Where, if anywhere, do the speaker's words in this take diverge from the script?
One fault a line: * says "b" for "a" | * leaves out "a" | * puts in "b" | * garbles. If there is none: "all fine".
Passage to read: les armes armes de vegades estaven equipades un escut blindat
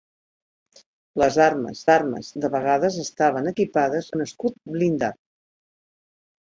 all fine